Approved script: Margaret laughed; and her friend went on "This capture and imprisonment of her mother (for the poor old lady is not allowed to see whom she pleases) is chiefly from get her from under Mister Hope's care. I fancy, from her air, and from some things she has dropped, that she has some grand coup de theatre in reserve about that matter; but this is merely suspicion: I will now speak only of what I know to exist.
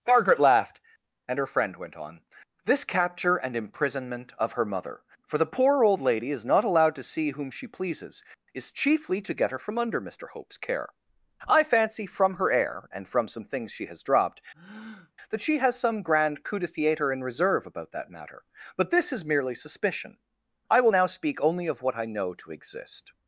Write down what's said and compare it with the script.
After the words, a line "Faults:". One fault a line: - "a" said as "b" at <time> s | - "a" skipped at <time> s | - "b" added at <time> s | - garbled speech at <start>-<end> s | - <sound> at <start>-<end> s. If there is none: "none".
Margaret laughed; and her friend went on "This capture and imprisonment of her mother (for the poor old lady is not allowed to see whom she pleases) is chiefly to get her from under Mister Hope's care. I fancy, from her air, and from some things she has dropped, that she has some grand coup de theatre in reserve about that matter; but this is merely suspicion: I will now speak only of what I know to exist.
Faults:
- "from" said as "to" at 9.2 s
- breath at 14.5-15.1 s